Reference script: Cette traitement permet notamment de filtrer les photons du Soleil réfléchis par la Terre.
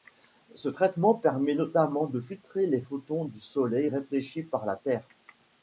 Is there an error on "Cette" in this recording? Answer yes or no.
yes